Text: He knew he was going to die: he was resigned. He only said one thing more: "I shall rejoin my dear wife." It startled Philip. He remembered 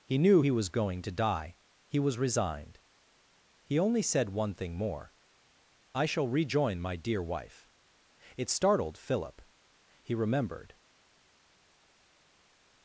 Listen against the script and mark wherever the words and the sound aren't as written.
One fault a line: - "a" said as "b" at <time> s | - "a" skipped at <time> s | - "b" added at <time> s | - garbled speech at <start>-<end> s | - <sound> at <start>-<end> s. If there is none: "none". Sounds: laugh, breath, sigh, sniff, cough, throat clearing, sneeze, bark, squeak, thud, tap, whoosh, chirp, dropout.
none